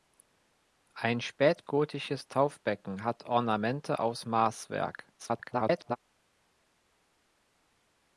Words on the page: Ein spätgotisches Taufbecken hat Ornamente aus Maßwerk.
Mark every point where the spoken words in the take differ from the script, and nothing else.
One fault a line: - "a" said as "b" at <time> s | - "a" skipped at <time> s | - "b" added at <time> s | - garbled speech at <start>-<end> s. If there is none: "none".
- garbled speech at 5.2-6.0 s